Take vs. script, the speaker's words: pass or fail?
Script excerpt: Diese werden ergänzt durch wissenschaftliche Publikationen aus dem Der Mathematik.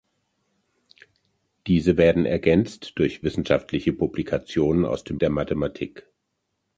pass